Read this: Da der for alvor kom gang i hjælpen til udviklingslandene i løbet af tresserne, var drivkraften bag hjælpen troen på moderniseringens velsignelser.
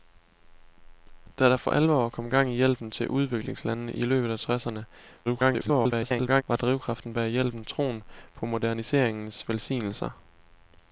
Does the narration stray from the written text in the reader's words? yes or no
yes